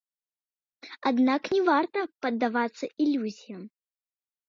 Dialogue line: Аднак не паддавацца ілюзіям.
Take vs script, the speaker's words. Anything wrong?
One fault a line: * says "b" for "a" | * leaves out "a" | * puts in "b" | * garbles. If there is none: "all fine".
* puts in "варта"